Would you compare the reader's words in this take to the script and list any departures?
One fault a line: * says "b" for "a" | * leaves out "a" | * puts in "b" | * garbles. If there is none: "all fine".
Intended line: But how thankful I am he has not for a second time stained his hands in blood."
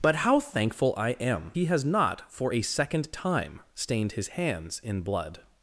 all fine